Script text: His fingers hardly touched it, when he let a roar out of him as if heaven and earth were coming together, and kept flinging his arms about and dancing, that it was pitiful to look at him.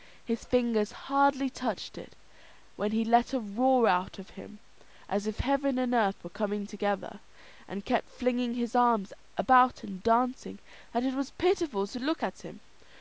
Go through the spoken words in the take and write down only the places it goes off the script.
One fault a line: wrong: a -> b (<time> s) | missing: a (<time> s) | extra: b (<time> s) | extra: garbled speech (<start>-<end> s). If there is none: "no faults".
no faults